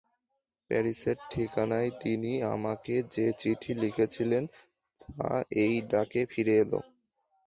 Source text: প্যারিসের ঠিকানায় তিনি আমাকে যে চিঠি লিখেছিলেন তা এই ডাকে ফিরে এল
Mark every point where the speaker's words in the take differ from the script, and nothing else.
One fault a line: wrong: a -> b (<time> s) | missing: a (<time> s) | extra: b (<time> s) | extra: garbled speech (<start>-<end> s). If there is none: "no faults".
no faults